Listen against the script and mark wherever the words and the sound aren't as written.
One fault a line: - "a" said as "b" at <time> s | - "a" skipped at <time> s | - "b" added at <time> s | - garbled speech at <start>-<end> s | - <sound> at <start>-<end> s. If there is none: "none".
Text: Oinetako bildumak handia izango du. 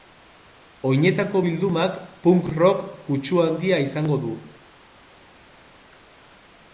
- "punk rock kutsu" added at 2.2 s